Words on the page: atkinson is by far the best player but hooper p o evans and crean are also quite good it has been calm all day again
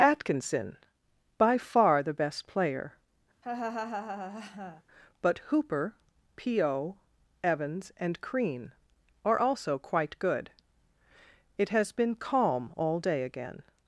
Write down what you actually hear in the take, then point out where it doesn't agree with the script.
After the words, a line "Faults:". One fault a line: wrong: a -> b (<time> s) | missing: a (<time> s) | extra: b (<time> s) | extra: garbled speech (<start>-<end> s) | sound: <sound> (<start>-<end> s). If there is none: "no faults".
atkinson by far the best player but hooper p o evans and crean are also quite good it has been calm all day again
Faults:
missing: is (0.8 s)
sound: laugh (3.4-4.8 s)